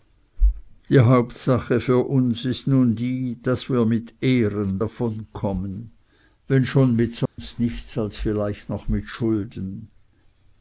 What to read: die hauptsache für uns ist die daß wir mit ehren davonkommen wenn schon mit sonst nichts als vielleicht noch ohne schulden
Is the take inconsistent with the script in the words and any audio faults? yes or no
yes